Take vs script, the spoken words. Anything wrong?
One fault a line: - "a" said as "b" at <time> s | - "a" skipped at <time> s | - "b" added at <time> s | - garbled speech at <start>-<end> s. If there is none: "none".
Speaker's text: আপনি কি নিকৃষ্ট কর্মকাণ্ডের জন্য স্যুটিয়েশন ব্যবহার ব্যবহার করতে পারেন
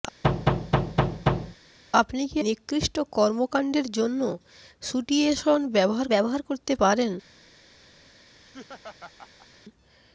none